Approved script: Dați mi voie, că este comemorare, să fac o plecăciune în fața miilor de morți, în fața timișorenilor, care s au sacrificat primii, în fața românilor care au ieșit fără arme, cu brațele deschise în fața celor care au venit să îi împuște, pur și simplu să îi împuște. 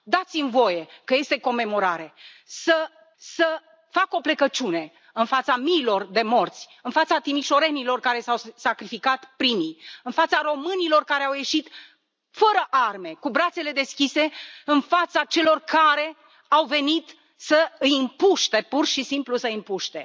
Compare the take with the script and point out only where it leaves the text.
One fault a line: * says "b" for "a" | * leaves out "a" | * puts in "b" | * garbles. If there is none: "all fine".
* puts in "să"